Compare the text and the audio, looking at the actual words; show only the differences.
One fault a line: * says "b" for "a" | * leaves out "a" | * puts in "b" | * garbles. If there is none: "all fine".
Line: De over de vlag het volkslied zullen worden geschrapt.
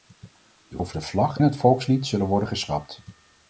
all fine